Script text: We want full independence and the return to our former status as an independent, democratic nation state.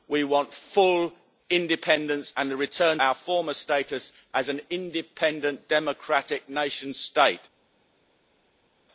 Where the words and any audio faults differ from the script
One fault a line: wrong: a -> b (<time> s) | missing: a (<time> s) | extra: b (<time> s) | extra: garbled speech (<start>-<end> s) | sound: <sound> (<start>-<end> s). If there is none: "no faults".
missing: to (3.0 s)